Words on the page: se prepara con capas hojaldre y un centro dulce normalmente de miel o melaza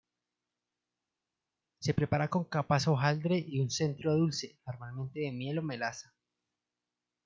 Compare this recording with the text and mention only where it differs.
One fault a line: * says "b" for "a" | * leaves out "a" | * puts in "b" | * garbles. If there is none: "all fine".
all fine